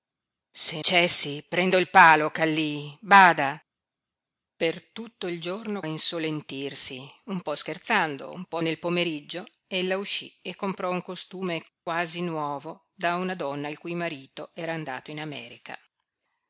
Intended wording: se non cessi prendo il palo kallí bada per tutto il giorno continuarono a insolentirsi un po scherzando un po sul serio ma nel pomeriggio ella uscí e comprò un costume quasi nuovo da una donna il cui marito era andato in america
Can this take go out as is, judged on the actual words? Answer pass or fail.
fail